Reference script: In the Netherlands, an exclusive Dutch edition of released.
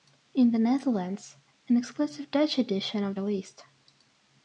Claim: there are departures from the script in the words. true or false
false